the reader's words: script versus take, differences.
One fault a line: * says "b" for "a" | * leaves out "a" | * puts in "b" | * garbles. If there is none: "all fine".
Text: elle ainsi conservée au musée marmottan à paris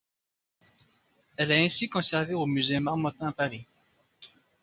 * puts in "est"